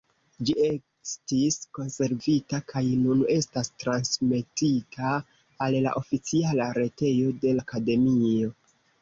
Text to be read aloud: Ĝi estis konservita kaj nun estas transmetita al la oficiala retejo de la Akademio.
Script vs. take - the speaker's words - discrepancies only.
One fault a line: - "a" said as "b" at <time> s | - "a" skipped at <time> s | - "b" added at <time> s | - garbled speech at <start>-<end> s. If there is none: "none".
- "la" skipped at 7.6 s